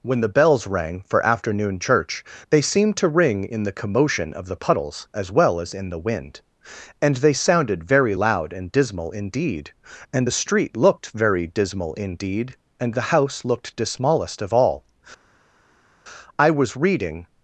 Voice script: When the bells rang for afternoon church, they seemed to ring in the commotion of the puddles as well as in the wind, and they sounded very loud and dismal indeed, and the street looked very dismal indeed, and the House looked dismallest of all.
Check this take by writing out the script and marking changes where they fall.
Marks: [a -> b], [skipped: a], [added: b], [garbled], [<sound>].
When the bells rang for afternoon church, they seemed to ring in the commotion of the puddles as well as in the wind, and they sounded very loud and dismal indeed, and the street looked very dismal indeed, and the House looked dismallest of all. [added: I was reading]